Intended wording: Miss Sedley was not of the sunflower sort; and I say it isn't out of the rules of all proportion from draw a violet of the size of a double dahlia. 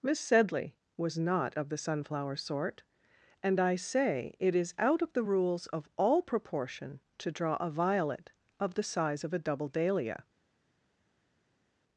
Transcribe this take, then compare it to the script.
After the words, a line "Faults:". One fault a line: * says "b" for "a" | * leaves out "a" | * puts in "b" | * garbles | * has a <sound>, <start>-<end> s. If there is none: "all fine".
Miss Sedley was not of the sunflower sort; and I say it is out of the rules of all proportion to draw a violet of the size of a double dahlia.
Faults:
* says "is" for "isn't"
* says "to" for "from"